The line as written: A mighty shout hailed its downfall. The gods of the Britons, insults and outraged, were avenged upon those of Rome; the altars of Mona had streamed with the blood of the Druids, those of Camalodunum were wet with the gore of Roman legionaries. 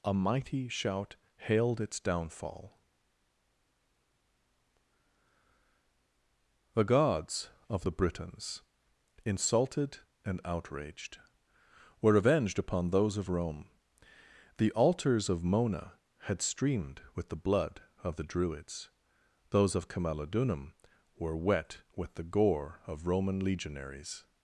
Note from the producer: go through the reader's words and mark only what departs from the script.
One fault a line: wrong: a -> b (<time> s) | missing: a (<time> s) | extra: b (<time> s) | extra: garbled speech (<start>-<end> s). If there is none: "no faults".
wrong: insults -> insulted (9.2 s)